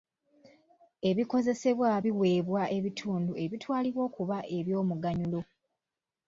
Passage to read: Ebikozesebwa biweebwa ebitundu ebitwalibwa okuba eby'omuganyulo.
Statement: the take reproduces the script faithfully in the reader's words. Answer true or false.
true